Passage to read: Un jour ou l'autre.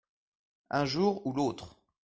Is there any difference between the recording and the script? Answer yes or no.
no